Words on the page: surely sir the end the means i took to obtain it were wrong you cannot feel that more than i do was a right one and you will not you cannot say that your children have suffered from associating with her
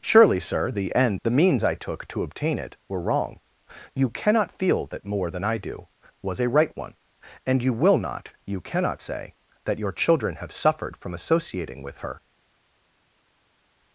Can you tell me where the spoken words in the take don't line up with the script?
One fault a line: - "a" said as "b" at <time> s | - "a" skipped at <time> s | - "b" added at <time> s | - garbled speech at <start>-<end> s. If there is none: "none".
none